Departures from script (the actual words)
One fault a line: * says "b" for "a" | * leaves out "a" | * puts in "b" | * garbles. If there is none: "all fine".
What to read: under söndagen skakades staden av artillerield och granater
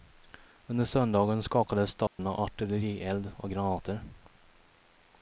all fine